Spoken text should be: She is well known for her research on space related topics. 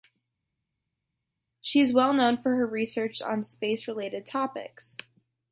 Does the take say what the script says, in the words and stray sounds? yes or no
yes